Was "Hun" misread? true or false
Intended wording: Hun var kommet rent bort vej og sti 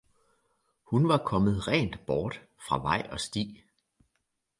false